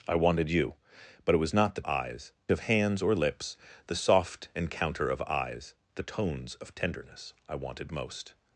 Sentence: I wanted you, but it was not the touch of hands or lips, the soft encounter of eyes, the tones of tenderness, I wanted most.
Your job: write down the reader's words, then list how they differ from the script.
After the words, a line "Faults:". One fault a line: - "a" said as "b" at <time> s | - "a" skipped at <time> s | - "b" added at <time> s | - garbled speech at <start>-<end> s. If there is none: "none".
I wanted you, but it was not the eyes of hands or lips, the soft encounter of eyes, the tones of tenderness, I wanted most.
Faults:
- "touch" said as "eyes" at 1.8 s